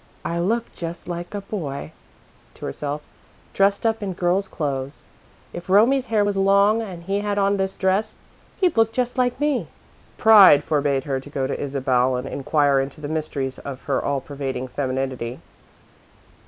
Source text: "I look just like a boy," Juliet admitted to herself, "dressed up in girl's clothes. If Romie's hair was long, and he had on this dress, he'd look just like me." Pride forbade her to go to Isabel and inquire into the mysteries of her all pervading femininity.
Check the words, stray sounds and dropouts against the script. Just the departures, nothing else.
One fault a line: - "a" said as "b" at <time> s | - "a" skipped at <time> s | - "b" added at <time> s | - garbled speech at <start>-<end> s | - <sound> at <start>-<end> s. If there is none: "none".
- "Juliet admitted" skipped at 1.9 s